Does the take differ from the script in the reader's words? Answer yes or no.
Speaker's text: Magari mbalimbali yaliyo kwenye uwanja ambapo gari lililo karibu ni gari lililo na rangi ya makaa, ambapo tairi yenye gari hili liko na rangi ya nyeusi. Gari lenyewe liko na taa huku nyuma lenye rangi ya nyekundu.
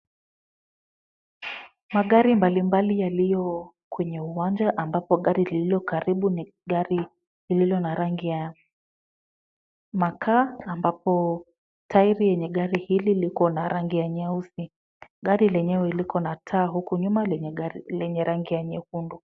no